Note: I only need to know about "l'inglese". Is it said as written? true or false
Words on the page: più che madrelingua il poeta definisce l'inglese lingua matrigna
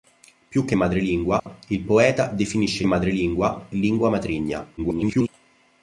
false